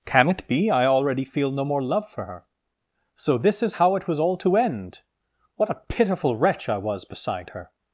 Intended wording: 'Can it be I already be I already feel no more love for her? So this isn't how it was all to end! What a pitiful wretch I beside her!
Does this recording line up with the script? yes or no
no